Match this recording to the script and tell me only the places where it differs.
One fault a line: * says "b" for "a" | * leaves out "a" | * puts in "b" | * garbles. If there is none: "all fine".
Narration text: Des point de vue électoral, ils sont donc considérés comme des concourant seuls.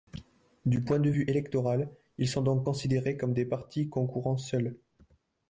* says "Du" for "Des"
* puts in "partis"